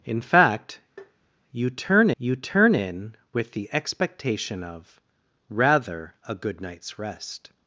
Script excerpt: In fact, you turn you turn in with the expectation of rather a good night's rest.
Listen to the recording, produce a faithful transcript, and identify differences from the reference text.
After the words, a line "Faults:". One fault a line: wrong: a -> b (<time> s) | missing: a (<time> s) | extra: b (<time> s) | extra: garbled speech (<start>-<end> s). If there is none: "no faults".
In fact, you turn you turn in with the expectation of rather a good night's rest.
Faults:
no faults